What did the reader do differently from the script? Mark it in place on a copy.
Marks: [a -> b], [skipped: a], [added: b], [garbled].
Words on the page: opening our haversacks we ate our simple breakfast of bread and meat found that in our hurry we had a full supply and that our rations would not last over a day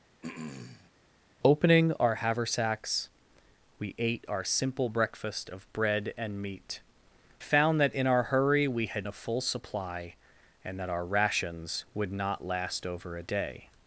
opening our haversacks we ate our simple breakfast of bread and meat found that in our hurry we had a full supply and that our rations would not last over a day